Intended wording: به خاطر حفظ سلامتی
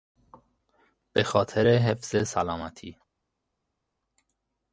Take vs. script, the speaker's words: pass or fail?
pass